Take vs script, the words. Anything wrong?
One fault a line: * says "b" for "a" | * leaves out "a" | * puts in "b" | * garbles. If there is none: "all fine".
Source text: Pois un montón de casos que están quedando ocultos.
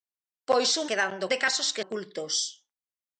* says "quedando" for "montón"
* leaves out "están quedando"